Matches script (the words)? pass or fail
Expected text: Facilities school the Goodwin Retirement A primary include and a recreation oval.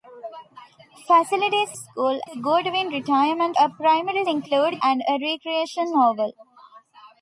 pass